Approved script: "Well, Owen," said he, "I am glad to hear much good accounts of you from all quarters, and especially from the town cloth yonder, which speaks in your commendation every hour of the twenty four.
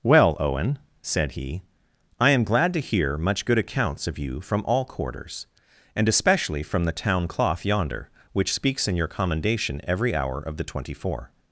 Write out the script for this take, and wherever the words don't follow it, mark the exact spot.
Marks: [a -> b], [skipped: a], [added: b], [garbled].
"Well, Owen," said he, "I am glad to hear much good accounts of you from all quarters, and especially from the town cloth yonder, which speaks in your commendation every hour of the twenty four.